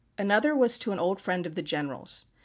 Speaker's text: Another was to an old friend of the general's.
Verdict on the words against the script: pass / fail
pass